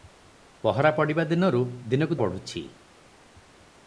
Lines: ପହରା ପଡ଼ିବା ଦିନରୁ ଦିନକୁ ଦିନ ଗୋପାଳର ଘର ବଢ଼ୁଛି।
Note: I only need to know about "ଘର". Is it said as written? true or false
false